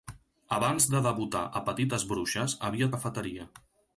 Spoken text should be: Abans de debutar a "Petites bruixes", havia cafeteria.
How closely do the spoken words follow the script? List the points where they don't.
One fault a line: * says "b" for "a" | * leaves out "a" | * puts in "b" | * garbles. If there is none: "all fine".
all fine